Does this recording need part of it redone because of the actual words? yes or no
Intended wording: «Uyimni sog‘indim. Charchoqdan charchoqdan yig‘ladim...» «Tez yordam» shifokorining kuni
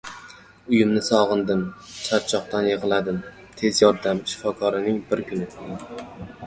yes